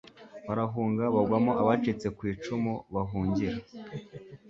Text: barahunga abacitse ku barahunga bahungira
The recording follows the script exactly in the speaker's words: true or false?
false